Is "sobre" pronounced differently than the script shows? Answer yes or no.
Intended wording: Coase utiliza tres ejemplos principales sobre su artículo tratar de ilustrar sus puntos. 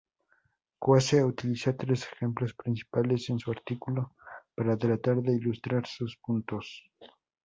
yes